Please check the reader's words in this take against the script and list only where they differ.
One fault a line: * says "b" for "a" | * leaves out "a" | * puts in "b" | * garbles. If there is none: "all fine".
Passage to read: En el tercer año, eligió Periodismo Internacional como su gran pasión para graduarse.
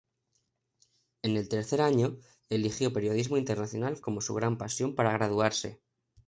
all fine